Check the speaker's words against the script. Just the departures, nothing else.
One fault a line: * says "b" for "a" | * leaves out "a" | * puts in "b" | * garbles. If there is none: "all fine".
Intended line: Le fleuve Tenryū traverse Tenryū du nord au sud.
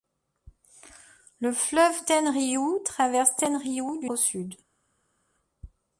* leaves out "nord"